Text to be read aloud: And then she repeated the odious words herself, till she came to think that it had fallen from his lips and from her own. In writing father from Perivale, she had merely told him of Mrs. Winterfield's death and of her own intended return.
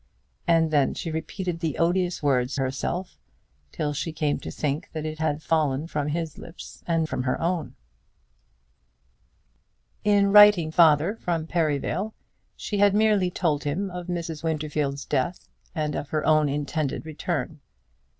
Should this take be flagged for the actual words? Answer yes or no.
no